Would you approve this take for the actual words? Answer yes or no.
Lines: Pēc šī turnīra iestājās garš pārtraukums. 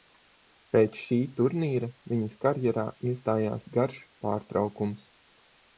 no